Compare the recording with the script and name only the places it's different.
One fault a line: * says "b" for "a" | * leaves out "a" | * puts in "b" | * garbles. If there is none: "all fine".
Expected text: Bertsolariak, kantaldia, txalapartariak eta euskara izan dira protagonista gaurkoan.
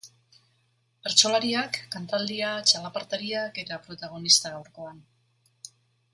* leaves out "eta euskara izan"